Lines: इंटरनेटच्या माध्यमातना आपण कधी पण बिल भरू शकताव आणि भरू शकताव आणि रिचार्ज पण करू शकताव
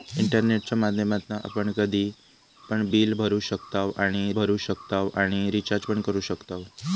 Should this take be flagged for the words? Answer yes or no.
no